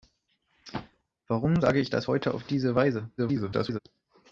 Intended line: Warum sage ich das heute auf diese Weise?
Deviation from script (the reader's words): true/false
true